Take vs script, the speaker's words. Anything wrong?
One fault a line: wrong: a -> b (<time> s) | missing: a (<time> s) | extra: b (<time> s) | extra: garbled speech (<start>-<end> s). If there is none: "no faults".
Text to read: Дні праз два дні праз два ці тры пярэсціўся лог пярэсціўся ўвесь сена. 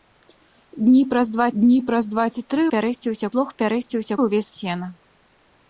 no faults